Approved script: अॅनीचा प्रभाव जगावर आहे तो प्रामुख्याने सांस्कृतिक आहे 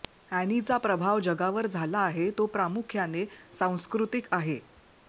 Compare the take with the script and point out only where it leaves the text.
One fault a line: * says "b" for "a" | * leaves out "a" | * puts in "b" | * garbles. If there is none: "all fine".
* puts in "झाला"